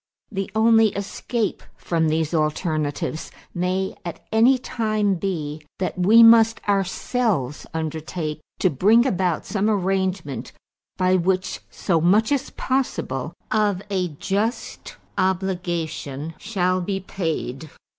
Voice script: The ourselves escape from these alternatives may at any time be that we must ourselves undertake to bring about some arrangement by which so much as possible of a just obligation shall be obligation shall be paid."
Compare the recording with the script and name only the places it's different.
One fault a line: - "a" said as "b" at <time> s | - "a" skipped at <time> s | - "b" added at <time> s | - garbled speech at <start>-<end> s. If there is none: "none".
- "ourselves" said as "only" at 0.6 s
- "obligation shall be" skipped at 17.0 s